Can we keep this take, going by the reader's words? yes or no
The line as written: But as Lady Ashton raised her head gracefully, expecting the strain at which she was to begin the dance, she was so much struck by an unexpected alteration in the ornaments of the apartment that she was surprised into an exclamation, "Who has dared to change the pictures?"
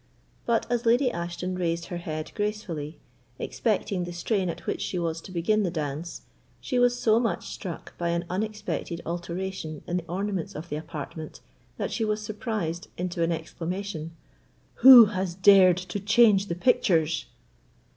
yes